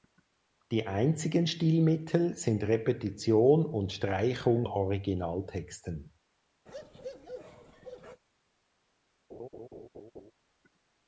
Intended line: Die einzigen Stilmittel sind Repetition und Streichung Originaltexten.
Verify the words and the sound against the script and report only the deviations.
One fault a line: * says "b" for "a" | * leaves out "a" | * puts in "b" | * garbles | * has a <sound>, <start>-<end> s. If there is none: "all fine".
* has a bark, 6.7-8.2 s
* has a laugh, 9.3-10.3 s